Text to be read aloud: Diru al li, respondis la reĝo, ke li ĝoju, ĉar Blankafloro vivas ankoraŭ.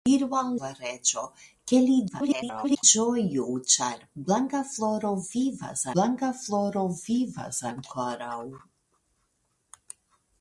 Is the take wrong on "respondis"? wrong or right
wrong